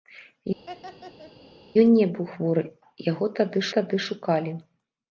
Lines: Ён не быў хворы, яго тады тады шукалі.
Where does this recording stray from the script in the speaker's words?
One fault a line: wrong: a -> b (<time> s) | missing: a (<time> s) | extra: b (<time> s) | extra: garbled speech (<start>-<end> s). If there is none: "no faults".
no faults